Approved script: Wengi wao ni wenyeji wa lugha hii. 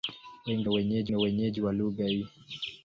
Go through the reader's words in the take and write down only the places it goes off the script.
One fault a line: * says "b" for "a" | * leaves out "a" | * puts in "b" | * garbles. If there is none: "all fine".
* says "wenyeji" for "wao"